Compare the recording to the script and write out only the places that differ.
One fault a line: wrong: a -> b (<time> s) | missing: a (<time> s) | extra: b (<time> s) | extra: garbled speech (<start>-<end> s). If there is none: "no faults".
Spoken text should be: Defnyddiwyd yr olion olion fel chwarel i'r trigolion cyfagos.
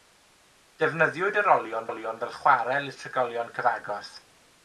no faults